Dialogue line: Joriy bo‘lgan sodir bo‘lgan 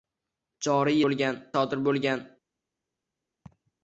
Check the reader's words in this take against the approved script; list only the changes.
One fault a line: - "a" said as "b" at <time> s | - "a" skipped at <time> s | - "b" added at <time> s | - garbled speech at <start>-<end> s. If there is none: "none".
none